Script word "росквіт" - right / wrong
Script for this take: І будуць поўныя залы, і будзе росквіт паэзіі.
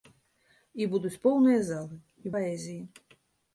wrong